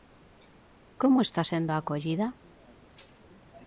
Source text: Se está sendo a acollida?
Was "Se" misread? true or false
true